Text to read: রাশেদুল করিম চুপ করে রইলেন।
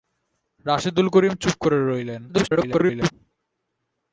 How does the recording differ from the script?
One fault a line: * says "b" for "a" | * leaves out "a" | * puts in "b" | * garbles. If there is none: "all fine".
* garbles